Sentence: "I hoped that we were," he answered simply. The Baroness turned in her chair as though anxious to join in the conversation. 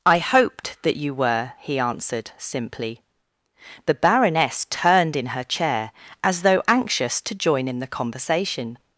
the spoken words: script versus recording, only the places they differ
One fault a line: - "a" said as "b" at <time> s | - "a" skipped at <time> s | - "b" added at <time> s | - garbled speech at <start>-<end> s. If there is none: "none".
- "we" said as "you" at 0.9 s